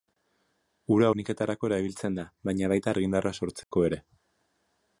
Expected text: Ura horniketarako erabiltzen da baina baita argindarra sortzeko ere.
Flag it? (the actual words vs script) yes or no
no